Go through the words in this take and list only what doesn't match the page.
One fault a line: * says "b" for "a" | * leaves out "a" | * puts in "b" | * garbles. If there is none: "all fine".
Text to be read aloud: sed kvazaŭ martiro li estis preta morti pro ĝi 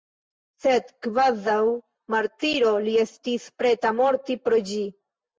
all fine